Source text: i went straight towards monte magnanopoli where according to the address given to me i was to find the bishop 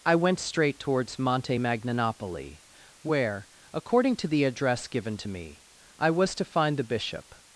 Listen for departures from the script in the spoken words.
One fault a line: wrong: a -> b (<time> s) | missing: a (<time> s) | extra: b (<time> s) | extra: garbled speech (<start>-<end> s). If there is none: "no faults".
no faults